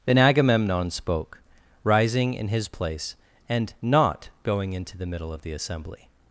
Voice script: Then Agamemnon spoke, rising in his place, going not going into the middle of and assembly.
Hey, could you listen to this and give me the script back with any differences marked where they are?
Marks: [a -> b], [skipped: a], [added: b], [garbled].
Then Agamemnon spoke, rising in his place, [going -> and] not going into the middle of [and -> the] assembly.